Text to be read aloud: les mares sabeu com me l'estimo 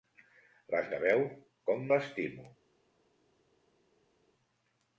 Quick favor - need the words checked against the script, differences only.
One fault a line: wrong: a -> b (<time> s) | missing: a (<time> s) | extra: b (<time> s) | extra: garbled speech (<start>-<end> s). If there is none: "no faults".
missing: mares (0.9 s)
missing: me (1.8 s)